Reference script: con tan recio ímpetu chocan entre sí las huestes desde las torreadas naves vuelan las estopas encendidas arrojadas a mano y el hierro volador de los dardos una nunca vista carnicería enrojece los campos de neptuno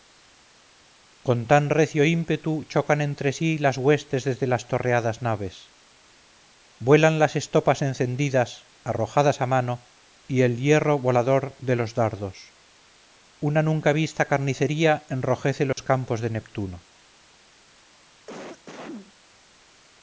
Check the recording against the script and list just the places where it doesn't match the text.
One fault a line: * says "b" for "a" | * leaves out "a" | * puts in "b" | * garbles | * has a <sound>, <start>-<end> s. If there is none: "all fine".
* has a dropout, 15.7-15.8 s
* has a cough, 18.3-19.1 s